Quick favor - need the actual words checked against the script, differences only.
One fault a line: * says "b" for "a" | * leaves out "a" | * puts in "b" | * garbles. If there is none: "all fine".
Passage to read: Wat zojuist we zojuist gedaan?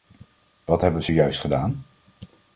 * says "hebben" for "zojuist"